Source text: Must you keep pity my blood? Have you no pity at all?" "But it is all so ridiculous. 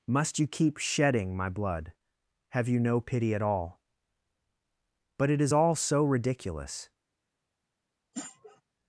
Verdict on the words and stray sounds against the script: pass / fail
fail